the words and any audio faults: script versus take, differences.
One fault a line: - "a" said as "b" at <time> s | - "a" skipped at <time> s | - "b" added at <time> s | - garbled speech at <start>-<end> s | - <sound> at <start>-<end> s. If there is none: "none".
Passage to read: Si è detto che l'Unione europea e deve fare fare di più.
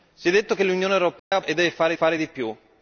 - dropout at 1.2-1.3 s